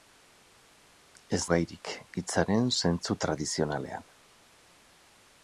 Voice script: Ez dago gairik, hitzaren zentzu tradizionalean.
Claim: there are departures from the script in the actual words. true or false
true